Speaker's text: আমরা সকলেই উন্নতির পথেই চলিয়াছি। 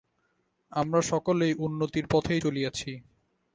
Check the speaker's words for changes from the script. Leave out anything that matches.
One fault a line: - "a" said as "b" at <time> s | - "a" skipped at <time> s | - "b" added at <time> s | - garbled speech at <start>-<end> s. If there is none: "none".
none